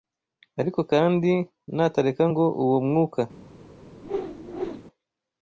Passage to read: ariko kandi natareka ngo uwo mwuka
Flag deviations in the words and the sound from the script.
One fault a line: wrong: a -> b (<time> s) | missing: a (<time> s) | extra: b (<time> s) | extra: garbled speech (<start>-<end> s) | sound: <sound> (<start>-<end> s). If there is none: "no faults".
sound: whoosh (4.0-4.8 s)